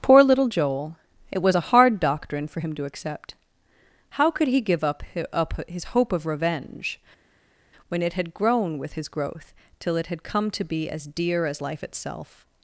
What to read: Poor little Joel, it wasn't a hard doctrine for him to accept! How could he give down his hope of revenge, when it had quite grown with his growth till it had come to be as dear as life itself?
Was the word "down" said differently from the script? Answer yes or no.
yes